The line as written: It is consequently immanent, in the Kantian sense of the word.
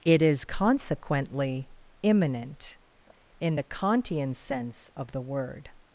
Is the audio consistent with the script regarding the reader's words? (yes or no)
yes